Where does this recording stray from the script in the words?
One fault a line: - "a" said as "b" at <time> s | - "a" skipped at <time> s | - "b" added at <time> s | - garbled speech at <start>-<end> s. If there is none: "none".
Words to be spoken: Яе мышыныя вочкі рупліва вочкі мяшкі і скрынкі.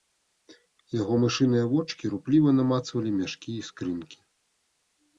- "Яе" said as "Яго" at 1.0 s
- "вочкі" said as "намацвалі" at 2.6 s